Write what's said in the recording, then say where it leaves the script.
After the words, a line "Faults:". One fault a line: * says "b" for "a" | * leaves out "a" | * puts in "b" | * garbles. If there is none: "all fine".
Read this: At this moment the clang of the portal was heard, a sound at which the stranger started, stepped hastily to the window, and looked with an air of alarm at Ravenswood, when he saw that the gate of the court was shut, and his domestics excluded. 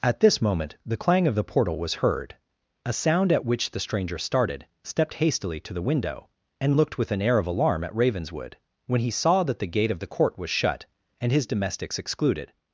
At this moment the clang of the portal was heard, a sound at which the stranger started, stepped hastily to the window, and looked with an air of alarm at Ravenswood, when he saw that the gate of the court was shut, and his domestics excluded.
Faults:
all fine